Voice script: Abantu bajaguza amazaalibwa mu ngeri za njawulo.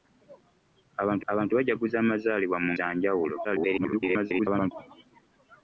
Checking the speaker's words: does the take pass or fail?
fail